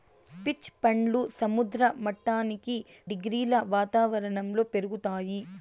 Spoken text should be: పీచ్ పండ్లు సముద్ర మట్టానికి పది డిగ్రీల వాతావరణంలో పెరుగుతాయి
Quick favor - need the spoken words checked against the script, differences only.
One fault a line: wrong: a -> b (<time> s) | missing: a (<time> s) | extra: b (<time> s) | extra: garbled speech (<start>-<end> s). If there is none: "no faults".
missing: పది (2.8 s)